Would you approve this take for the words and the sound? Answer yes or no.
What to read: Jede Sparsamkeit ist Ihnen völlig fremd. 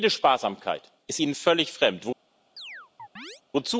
no